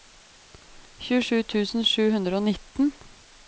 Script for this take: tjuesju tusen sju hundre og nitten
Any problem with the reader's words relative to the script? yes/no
no